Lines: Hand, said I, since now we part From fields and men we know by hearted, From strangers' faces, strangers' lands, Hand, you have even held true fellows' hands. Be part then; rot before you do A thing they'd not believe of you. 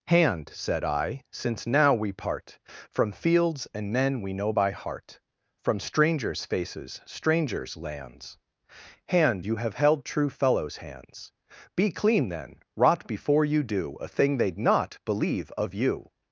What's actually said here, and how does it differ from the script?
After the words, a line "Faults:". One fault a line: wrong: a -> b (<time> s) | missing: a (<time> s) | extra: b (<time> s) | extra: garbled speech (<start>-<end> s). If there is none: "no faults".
Hand, said I, since now we part From fields and men we know by heart, From strangers' faces, strangers' lands, Hand, you have held true fellows' hands. Be clean then; rot before you do A thing they'd not believe of you.
Faults:
wrong: hearted -> heart (4.7 s)
missing: even (9.7 s)
wrong: part -> clean (11.9 s)